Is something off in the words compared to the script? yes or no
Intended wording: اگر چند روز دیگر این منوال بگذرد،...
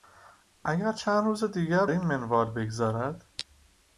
no